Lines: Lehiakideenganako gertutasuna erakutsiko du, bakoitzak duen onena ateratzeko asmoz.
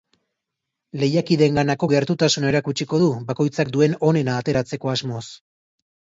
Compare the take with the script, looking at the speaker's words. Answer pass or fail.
pass